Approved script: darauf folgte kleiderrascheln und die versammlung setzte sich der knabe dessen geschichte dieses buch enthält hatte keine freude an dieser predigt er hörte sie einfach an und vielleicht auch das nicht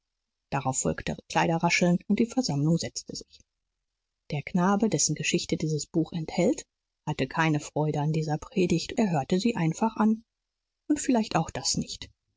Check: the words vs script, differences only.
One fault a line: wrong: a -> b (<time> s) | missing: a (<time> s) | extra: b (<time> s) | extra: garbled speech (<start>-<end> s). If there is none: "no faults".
no faults